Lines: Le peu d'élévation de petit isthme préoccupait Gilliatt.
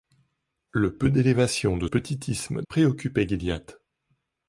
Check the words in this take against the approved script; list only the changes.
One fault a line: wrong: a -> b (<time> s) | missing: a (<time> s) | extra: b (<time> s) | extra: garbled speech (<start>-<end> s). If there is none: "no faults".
no faults